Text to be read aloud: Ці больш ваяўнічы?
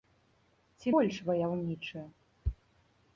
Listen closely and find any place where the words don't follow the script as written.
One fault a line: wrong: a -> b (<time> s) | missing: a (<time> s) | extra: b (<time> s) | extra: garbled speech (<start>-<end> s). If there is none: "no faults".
no faults